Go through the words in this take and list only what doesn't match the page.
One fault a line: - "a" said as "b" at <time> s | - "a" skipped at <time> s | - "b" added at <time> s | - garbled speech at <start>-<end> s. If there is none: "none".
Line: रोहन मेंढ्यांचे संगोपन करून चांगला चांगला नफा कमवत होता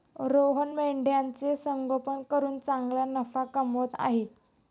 - "चांगला" skipped at 3.0 s
- "होता" said as "आहे" at 4.0 s